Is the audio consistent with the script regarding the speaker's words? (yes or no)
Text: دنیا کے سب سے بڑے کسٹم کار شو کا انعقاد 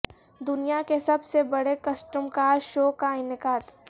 yes